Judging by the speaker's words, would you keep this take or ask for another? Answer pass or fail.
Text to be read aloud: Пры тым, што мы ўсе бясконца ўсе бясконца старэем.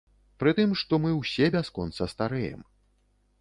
fail